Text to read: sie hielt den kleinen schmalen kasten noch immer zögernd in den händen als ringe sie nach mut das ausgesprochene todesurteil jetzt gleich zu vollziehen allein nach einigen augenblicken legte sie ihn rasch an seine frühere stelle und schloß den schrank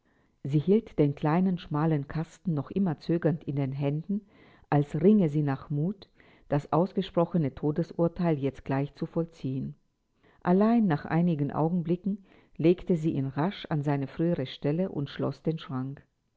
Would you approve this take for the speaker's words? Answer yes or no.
yes